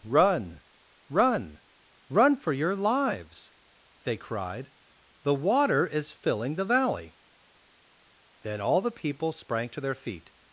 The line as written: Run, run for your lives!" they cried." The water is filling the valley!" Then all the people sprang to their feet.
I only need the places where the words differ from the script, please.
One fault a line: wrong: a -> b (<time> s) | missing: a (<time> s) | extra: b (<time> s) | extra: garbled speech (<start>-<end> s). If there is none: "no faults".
extra: run (2.1 s)